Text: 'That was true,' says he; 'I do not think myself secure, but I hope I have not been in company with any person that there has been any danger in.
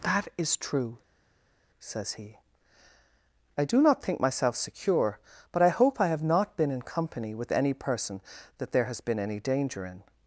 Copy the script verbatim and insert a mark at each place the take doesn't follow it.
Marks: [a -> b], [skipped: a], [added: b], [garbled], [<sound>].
'That [was -> is] true,' says he; 'I do not think myself secure, but I hope I have not been in company with any person that there has been any danger in.